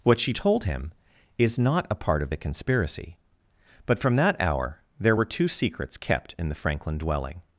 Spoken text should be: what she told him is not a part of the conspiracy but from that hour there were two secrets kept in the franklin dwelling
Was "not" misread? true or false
false